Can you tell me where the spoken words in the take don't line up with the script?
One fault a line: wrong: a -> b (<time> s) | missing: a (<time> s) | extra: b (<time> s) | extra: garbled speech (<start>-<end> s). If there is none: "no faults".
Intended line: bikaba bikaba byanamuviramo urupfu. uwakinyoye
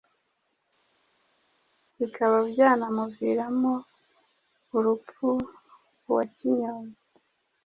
missing: bikaba (2.4 s)